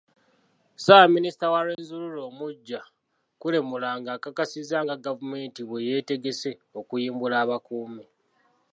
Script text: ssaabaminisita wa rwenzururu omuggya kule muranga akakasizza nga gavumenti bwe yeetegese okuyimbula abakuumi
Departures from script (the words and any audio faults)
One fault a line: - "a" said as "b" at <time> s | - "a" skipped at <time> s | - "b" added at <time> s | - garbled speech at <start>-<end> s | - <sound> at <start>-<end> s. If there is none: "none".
- dropout at 1.7-1.8 s